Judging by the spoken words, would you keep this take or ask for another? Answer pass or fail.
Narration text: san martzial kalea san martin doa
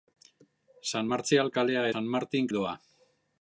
pass